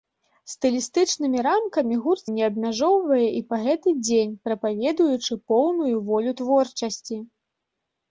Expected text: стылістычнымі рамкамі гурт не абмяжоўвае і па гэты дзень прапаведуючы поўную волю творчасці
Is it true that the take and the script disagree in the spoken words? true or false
false